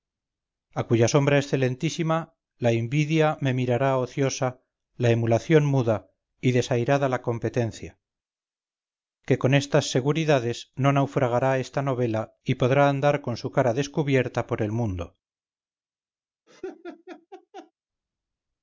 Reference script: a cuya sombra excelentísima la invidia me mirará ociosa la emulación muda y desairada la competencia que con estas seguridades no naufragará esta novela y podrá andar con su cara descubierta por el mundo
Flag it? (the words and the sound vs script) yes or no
yes